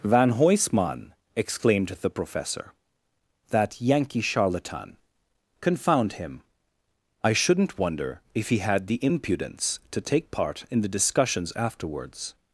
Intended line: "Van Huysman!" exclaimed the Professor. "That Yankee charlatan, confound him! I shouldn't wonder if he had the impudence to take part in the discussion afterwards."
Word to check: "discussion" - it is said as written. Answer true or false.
false